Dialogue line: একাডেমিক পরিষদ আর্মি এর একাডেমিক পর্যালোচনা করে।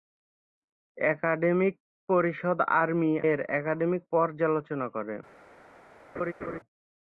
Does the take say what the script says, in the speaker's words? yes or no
yes